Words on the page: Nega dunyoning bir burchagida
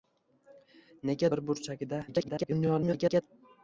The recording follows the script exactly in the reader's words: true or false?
false